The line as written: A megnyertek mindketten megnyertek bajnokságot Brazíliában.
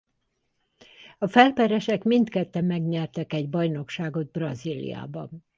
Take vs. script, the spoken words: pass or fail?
fail